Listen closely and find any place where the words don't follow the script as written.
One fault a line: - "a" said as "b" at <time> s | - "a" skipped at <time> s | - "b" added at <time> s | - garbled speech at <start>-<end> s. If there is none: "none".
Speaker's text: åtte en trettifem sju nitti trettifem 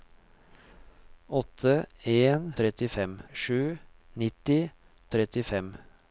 none